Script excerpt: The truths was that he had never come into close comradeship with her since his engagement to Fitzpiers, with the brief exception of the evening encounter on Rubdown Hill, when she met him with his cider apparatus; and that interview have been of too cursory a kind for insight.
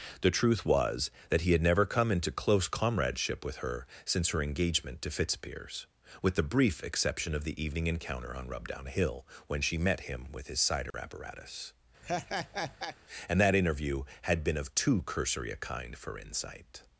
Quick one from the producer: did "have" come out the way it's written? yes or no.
no